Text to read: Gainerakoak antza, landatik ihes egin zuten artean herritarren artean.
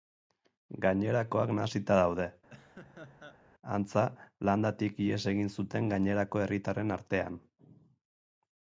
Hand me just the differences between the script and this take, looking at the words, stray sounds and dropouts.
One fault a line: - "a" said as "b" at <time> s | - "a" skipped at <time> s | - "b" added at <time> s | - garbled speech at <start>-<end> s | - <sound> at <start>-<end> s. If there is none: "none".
- "nahasita daude" added at 1.6 s
- laugh at 2.5-3.4 s
- "artean" said as "gainerako" at 5.9 s